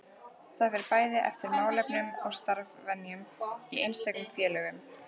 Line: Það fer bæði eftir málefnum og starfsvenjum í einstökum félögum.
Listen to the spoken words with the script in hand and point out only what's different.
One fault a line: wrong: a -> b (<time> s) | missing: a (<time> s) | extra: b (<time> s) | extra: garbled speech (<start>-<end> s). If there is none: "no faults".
no faults